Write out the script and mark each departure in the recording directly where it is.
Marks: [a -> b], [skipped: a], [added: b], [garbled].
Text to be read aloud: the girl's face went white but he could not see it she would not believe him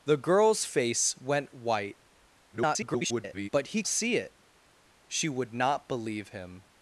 the girl's face went white [garbled] but he [skipped: could not] see it she would not believe him